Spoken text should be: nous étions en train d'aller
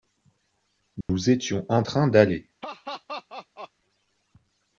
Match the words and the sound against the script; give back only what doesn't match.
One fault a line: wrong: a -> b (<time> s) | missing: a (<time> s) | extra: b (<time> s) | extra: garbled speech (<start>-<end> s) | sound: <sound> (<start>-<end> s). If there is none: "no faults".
sound: dropout (1.0-1.1 s)
sound: laugh (2.6-3.7 s)